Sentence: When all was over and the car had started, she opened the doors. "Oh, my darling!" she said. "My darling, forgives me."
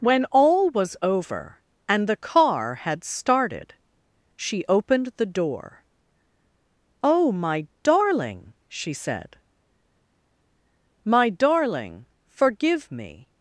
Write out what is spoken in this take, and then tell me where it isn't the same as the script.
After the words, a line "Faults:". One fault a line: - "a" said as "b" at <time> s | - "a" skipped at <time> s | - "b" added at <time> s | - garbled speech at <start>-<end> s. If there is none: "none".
When all was over and the car had started, she opened the door. "Oh, my darling!" she said. "My darling, forgive me."
Faults:
- "doors" said as "door" at 5.2 s
- "forgives" said as "forgive" at 12.3 s